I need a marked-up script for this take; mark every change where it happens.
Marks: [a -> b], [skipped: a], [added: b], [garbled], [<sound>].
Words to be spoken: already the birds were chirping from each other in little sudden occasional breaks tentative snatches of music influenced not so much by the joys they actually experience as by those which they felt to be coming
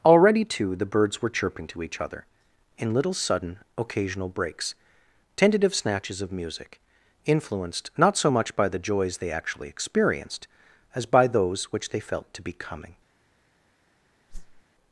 already [added: too] the birds were chirping [from -> to] each other in little sudden occasional breaks tentative snatches of music influenced not so much by the joys they actually [experience -> experienced] as by those which they felt to be coming [whoosh]